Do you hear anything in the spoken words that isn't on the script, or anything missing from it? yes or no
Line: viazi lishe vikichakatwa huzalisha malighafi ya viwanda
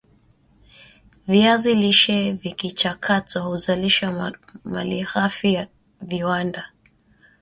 no